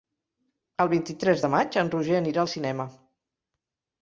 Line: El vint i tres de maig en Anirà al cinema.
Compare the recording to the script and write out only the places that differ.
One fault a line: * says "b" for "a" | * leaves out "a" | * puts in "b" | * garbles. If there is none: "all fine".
* puts in "Roger"